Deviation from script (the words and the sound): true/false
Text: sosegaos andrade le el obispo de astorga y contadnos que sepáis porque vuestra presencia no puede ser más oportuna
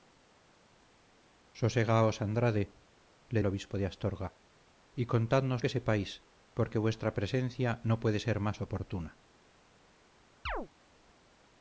true